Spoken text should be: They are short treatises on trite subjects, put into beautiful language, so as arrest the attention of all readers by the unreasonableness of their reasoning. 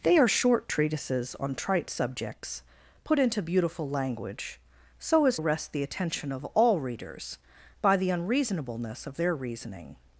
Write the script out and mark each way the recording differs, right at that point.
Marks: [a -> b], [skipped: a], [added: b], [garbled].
They are short treatises on trite subjects, put into beautiful language, so as arrest the attention of all readers by the unreasonableness of their reasoning.